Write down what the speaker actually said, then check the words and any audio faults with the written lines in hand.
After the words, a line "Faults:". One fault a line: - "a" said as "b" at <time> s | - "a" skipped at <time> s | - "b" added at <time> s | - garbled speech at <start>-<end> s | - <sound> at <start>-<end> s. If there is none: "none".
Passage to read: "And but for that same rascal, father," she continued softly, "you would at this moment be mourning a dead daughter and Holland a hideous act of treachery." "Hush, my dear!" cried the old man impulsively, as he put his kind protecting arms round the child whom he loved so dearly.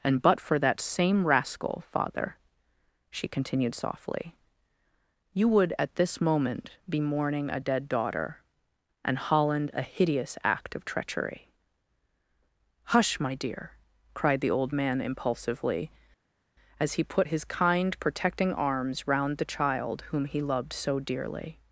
"And but for that same rascal, father," she continued softly, "you would at this moment be mourning a dead daughter and Holland a hideous act of treachery." "Hush, my dear!" cried the old man impulsively, as he put his kind protecting arms round the child whom he loved so dearly.
Faults:
none